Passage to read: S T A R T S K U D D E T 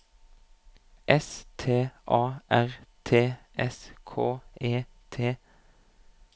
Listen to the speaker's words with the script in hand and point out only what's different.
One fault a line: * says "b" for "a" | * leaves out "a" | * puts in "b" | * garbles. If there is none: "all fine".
* leaves out "U D D"